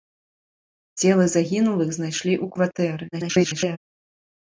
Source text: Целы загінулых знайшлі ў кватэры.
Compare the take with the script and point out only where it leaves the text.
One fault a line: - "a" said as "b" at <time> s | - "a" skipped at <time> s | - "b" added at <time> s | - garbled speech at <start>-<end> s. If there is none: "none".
- garbled speech at 3.1-3.8 s